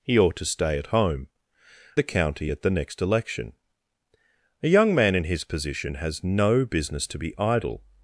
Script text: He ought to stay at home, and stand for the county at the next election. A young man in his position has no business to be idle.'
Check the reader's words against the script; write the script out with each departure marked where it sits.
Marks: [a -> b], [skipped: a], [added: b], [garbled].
He ought to stay at home, [skipped: and stand for] the county at the next election. A young man in his position has no business to be idle.'